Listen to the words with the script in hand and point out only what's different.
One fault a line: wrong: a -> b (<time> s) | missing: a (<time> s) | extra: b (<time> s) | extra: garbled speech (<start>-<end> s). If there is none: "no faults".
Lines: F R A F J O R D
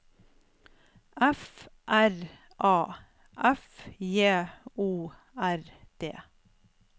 no faults